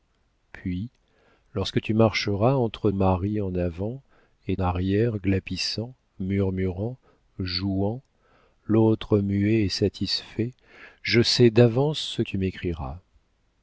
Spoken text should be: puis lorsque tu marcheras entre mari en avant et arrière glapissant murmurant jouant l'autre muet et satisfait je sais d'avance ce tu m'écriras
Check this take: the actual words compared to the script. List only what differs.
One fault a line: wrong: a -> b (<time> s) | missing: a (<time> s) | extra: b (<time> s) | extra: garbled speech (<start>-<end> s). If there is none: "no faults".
no faults